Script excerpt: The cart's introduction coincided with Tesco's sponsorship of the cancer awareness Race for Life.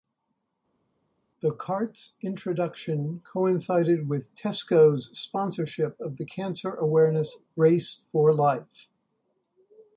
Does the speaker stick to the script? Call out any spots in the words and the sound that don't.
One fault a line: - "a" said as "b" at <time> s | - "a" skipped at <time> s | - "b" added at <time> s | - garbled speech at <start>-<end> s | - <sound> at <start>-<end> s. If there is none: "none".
none